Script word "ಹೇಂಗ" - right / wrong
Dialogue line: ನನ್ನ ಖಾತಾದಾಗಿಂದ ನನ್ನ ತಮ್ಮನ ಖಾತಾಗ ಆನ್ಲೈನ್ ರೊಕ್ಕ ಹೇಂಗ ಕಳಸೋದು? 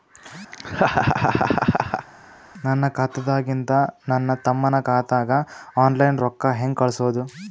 right